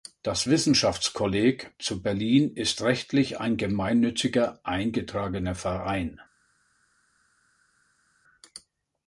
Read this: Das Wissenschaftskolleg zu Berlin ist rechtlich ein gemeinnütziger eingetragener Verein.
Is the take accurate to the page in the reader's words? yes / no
yes